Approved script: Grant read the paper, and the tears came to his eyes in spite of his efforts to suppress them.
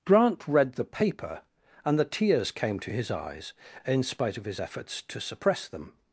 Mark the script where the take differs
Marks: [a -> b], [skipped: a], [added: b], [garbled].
Grant read the paper, and the tears came to his eyes in spite of his efforts to suppress them.